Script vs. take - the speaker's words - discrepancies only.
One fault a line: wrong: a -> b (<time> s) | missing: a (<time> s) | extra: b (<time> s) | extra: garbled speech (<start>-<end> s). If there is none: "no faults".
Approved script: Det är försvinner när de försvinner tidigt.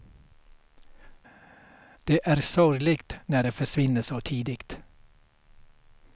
wrong: försvinner -> sorgligt (2.4 s)
extra: så (4.0 s)